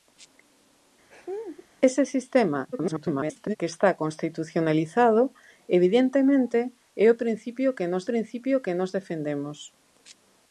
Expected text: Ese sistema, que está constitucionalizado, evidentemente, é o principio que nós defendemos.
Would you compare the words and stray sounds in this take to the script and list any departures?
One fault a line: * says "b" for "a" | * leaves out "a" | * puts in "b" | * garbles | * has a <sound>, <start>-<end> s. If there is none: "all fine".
* has a laugh, 1.1-1.7 s
* garbles
* puts in "principio que nós"